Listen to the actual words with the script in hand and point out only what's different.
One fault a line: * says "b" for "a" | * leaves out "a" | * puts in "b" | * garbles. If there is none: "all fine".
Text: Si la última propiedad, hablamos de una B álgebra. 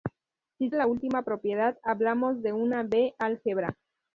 all fine